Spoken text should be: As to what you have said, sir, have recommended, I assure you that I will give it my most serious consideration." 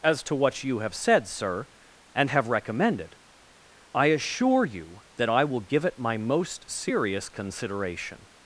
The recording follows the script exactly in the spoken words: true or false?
false